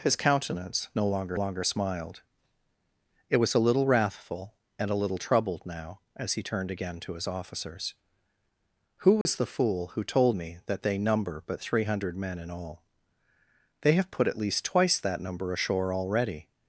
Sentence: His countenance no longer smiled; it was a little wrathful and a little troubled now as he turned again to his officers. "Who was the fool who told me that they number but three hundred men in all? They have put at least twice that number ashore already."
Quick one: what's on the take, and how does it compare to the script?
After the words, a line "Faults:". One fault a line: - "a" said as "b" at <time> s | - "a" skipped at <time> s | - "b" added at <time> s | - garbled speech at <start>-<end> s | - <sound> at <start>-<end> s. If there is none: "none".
His countenance no longer longer smiled; it was a little wrathful and a little troubled now as he turned again to his officers. "Who was the fool who told me that they number but three hundred men in all? They have put at least twice that number ashore already."
Faults:
- "longer" added at 1.3 s
- dropout at 9.2-9.3 s